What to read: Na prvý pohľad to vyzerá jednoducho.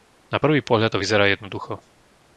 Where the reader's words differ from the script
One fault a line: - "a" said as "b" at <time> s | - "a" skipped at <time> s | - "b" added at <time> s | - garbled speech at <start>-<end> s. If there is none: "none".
none